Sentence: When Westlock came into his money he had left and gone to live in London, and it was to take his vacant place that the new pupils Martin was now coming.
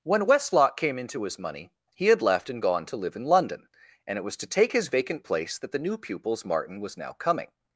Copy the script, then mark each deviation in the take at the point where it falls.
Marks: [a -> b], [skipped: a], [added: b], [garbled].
When Westlock came into his money he had left and gone to live in London, and it was to take his vacant place that the new pupils Martin was now coming.